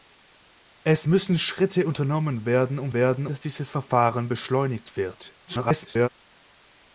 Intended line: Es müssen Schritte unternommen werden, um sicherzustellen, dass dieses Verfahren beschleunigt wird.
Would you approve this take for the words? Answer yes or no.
no